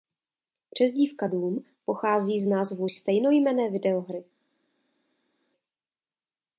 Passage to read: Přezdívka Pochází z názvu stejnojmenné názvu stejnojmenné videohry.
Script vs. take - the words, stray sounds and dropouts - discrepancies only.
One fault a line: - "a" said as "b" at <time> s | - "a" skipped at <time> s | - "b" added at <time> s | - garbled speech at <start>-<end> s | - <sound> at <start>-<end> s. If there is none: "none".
- "Doom" added at 1.3 s
- "názvu stejnojmenné" skipped at 3.7 s